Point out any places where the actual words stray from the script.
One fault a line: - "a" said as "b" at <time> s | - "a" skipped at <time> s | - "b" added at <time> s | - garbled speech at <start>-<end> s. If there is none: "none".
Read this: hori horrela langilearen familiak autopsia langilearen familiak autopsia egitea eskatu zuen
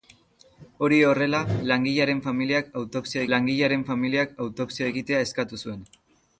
none